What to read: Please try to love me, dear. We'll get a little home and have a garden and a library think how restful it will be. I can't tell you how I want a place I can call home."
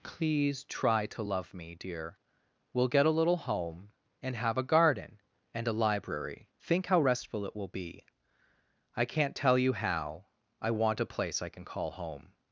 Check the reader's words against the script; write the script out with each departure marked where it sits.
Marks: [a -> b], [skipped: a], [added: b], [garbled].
Please try to love me, dear. We'll get a little home and have a garden and a library think how restful it will be. I can't tell you how I want a place I can call home."